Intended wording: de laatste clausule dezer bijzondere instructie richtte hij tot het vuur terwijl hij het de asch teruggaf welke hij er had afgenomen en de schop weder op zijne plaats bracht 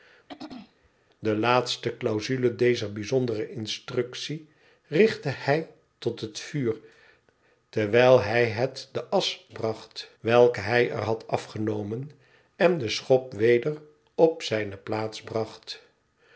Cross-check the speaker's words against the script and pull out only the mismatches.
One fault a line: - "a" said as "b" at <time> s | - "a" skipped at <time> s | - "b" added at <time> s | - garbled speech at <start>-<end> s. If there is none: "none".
- "teruggaf" said as "bracht" at 9.5 s